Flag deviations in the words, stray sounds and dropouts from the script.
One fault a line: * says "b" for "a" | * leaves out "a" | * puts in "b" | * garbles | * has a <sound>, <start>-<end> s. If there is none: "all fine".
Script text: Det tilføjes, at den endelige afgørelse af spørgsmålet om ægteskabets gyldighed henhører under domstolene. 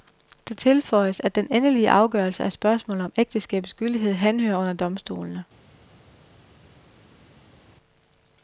all fine